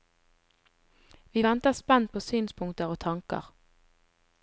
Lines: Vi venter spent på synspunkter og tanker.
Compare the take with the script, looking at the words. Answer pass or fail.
pass